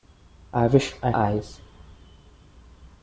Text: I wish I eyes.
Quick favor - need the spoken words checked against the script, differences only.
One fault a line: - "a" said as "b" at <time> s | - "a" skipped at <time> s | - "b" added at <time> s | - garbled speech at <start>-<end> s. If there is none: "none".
none